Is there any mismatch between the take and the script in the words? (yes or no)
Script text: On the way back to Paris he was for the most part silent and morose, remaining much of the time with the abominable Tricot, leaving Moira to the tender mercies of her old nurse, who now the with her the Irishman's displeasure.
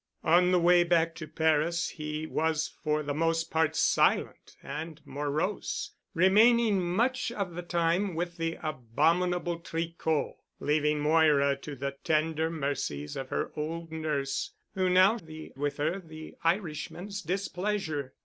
no